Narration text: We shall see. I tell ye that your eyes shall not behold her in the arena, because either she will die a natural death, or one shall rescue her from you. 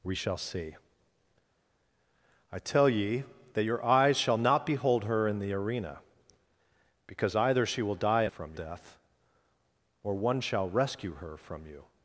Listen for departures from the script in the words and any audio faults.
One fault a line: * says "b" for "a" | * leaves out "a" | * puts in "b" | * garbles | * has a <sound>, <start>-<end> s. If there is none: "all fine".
* says "from" for "natural"